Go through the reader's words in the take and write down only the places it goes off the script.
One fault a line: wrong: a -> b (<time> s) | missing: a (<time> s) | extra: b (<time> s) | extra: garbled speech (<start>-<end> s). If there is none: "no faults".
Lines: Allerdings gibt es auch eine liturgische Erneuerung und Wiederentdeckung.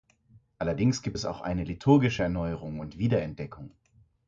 no faults